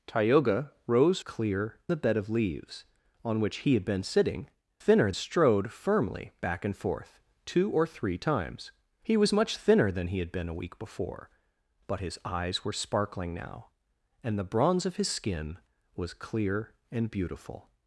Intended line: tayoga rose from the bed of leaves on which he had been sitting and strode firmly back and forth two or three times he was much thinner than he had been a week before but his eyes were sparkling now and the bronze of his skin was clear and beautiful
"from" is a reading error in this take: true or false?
true